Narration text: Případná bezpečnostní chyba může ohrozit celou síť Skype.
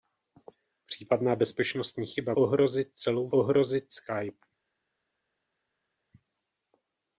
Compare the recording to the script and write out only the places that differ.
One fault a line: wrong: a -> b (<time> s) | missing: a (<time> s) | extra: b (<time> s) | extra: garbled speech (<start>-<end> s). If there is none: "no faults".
missing: může (2.3 s)
wrong: síť -> ohrozit (3.3 s)